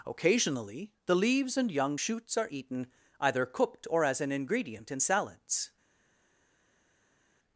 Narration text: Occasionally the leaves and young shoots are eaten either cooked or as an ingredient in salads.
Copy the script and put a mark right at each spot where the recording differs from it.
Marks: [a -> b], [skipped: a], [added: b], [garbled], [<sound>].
Occasionally the leaves and young shoots are eaten either cooked or as an ingredient in salads.